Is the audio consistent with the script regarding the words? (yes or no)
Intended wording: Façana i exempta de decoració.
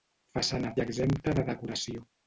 yes